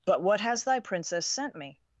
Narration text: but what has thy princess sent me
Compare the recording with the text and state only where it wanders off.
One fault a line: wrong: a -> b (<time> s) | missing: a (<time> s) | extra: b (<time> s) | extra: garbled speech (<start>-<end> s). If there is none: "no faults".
no faults